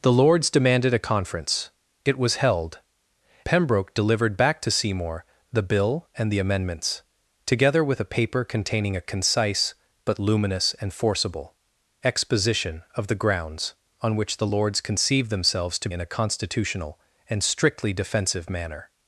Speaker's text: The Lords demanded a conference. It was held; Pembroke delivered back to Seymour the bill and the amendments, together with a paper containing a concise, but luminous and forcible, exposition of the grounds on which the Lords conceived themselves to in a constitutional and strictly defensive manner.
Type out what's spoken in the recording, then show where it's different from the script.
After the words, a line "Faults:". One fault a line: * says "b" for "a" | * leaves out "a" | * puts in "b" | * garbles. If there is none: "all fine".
The Lords demanded a conference. It was held; Pembroke delivered back to Seymour the bill and the amendments, together with a paper containing a concise, but luminous and forcible, exposition of the grounds on which the Lords conceived themselves to in a constitutional and strictly defensive manner.
Faults:
all fine